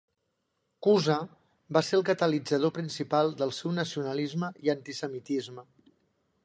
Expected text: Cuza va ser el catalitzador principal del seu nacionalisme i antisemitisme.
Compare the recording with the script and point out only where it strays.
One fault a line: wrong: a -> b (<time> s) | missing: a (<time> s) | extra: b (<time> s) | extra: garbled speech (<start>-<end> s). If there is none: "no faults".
no faults